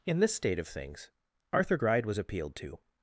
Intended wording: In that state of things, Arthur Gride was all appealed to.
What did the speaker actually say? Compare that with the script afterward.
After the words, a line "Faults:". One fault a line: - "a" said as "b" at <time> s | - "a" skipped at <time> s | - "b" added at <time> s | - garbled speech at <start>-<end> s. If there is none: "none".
In this state of things, Arthur Gride was appealed to.
Faults:
- "that" said as "this" at 0.2 s
- "all" skipped at 2.2 s